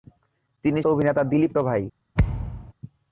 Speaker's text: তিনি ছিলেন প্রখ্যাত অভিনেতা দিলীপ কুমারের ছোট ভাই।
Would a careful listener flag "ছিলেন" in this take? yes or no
yes